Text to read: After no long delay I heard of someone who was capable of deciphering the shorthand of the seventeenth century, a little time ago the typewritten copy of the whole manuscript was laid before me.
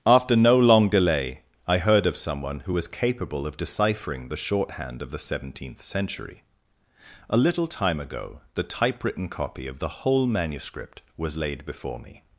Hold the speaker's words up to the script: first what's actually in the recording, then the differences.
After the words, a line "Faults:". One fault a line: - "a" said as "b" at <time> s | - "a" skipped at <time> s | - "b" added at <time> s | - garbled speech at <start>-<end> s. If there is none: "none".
After no long delay I heard of someone who was capable of deciphering the shorthand of the seventeenth century, a little time ago the typewritten copy of the whole manuscript was laid before me.
Faults:
none